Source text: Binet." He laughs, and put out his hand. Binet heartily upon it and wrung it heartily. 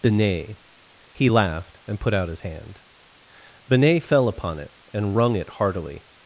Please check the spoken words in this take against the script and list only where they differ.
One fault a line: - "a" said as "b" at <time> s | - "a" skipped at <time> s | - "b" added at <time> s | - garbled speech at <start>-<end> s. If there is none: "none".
- "laughs" said as "laughed" at 1.3 s
- "heartily" said as "fell" at 4.0 s